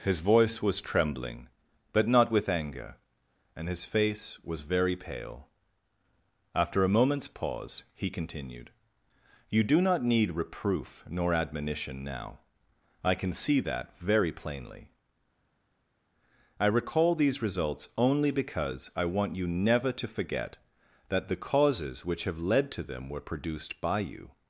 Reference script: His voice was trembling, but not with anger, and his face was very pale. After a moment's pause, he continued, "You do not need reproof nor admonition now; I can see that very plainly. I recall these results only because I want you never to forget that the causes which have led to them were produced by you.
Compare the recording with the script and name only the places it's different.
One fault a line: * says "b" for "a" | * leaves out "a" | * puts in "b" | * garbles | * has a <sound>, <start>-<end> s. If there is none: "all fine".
all fine